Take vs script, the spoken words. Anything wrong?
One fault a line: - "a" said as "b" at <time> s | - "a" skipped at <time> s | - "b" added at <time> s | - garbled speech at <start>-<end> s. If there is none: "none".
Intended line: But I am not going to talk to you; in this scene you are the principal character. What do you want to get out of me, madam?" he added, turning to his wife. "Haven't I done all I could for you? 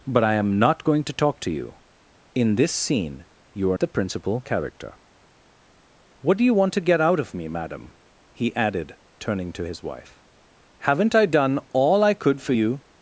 none